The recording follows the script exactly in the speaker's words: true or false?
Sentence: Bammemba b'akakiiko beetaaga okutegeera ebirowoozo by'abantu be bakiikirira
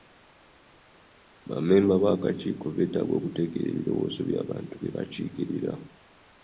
true